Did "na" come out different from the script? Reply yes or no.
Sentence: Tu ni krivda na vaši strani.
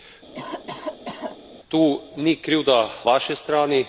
yes